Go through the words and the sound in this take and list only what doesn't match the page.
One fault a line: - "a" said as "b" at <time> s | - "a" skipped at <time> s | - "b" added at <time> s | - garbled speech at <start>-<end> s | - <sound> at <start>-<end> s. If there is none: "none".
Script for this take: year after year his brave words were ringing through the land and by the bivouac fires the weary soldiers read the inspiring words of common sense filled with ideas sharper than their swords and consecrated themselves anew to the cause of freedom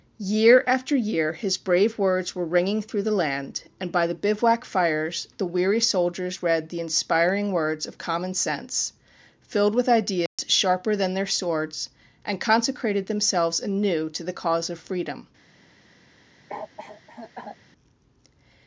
- dropout at 10.3-10.4 s
- cough at 16.5-17.6 s